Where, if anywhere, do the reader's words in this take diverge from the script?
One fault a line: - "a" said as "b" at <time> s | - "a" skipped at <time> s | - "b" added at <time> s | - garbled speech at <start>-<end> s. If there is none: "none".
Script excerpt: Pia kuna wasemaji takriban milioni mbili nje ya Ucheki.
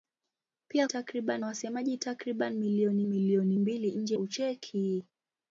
- "kuna" said as "takriban" at 0.8 s
- "milioni" added at 3.1 s
- "ya" skipped at 4.2 s